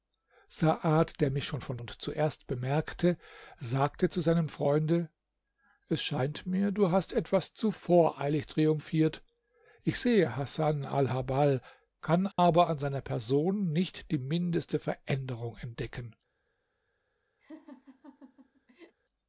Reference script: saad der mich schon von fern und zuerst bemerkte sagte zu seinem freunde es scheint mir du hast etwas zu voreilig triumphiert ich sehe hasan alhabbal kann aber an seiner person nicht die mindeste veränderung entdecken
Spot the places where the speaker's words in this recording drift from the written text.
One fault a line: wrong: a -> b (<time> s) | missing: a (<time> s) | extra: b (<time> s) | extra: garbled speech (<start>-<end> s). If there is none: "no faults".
missing: fern (1.8 s)